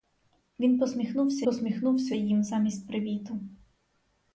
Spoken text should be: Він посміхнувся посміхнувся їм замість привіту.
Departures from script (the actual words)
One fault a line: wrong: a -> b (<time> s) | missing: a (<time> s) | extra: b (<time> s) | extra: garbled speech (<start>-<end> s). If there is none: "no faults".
no faults